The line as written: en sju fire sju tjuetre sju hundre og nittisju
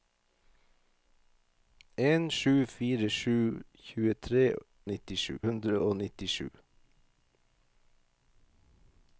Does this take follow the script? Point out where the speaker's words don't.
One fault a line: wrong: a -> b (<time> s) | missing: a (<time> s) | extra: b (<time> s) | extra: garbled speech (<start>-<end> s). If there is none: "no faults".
wrong: sju -> nittisju (4.9 s)